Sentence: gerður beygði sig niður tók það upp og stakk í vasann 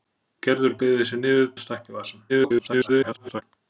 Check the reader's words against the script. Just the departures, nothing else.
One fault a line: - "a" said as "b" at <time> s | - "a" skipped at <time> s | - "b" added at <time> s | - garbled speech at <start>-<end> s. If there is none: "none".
- "tók það upp" skipped at 1.5 s
- garbled speech at 2.3-3.4 s